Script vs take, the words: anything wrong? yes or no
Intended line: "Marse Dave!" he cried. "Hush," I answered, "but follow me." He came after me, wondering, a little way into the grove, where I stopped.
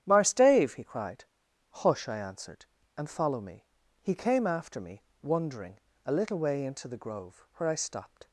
yes